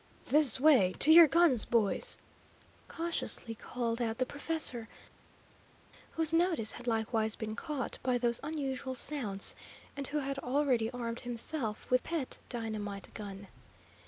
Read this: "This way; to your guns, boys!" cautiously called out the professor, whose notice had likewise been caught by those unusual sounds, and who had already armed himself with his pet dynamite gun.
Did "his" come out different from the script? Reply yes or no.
yes